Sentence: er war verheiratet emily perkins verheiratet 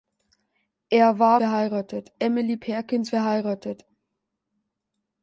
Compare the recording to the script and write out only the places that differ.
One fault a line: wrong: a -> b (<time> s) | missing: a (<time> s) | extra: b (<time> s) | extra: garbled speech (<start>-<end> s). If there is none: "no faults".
no faults